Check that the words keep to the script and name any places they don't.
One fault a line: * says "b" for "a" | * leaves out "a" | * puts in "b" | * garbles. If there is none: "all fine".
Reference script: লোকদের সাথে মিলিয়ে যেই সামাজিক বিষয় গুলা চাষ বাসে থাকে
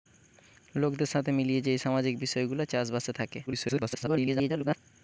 * garbles